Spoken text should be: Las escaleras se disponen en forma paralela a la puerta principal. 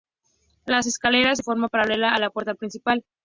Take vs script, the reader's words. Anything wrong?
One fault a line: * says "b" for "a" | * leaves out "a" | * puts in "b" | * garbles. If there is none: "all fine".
* leaves out "disponen"